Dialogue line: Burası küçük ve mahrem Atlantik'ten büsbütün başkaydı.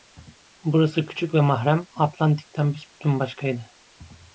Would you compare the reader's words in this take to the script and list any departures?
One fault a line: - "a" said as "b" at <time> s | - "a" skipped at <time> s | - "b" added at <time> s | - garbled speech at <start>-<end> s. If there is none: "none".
none